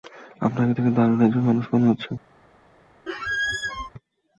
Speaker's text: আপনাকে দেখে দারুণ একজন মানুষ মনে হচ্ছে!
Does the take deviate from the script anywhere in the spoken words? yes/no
no